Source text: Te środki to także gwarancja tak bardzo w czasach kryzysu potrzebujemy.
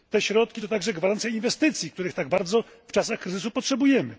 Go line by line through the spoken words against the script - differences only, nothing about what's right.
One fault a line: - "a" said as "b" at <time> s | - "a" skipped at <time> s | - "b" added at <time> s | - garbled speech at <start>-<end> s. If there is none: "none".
- "inwestycji których" added at 1.3 s